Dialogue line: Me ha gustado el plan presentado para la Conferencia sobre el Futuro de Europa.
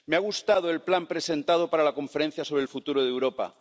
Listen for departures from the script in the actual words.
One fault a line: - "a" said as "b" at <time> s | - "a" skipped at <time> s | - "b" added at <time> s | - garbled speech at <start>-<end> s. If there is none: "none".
none